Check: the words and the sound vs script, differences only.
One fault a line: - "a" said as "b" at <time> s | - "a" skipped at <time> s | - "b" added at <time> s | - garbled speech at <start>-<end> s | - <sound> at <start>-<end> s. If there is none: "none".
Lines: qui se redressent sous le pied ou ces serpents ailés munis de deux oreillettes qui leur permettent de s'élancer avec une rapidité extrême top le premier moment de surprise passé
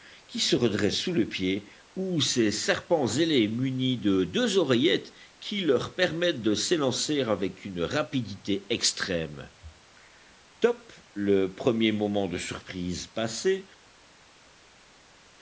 none